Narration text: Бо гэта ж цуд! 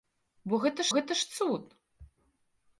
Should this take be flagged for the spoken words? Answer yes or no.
yes